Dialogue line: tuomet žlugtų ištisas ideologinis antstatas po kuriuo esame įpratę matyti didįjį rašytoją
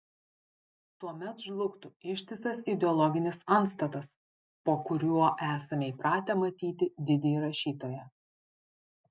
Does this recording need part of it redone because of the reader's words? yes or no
no